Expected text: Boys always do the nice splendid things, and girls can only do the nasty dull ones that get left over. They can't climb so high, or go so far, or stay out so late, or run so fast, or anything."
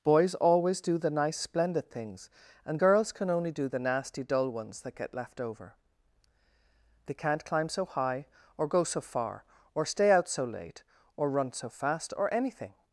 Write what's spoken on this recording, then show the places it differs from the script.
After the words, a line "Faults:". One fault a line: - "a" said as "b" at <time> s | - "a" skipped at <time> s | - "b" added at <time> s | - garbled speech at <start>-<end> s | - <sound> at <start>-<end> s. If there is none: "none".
Boys always do the nice splendid things, and girls can only do the nasty dull ones that get left over. They can't climb so high, or go so far, or stay out so late, or run so fast, or anything."
Faults:
none